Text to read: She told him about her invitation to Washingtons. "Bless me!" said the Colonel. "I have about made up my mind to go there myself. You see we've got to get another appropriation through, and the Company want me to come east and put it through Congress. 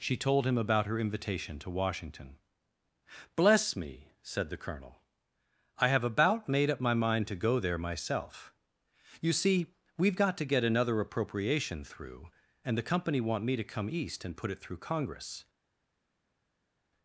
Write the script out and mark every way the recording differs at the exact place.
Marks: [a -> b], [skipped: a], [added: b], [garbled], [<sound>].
She told him about her invitation to [Washingtons. -> Washington] "Bless me!" said the Colonel. "I have about made up my mind to go there myself. You see we've got to get another appropriation through, and the Company want me to come east and put it through Congress.